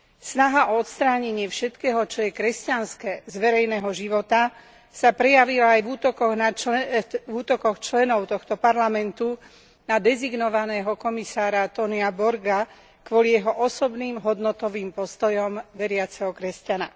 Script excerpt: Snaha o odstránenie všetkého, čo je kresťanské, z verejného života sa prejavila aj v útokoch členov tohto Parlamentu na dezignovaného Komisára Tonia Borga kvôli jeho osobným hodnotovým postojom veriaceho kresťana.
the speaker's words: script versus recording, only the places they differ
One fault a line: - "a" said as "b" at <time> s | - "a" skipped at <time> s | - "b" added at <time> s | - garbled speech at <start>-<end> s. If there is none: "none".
none